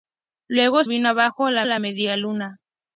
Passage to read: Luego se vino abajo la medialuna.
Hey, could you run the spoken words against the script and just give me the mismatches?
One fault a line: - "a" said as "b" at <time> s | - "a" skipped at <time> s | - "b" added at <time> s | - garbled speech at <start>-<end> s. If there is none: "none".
- "se" skipped at 0.8 s
- "la" added at 1.6 s